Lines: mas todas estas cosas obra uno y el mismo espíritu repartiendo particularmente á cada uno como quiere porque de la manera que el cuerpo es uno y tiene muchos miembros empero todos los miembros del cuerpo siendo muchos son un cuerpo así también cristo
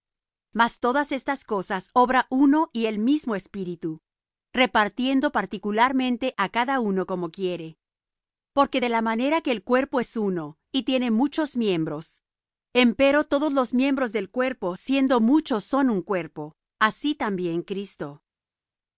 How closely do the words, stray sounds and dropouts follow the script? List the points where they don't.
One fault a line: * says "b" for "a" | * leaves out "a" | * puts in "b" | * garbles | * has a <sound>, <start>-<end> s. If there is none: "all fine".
all fine